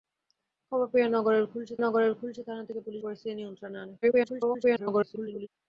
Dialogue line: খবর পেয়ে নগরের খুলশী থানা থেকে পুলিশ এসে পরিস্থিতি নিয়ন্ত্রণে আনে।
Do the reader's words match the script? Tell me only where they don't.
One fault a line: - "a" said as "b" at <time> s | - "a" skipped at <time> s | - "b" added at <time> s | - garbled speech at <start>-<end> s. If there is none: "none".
- "নগরের খুলশী" added at 1.8 s
- "এসে" skipped at 3.0 s
- garbled speech at 4.0-5.5 s